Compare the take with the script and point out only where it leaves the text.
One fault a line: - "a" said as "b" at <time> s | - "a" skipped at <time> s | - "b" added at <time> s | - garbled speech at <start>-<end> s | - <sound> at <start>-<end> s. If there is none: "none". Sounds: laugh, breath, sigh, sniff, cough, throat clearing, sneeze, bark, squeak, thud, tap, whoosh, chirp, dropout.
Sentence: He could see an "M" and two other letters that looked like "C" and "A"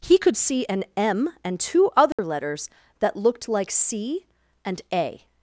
- dropout at 2.1-2.2 s